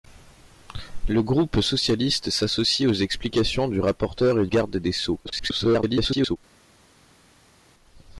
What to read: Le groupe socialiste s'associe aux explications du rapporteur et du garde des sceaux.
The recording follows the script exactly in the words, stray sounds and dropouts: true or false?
false